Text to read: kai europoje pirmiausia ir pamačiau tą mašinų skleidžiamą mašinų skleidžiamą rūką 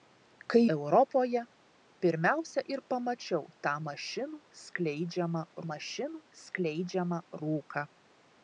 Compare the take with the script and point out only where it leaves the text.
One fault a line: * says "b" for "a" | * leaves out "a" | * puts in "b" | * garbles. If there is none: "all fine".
all fine